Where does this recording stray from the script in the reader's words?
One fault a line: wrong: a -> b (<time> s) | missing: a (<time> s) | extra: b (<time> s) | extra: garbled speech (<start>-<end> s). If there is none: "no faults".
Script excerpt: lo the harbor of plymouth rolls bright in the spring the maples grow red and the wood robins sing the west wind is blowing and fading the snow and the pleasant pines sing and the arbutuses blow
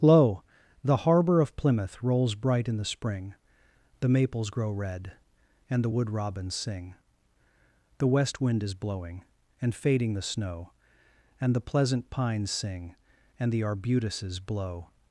no faults